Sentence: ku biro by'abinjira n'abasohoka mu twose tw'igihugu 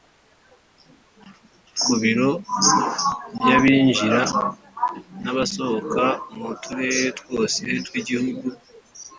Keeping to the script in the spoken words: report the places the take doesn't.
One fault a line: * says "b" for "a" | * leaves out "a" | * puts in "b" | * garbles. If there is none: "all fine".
* puts in "turere"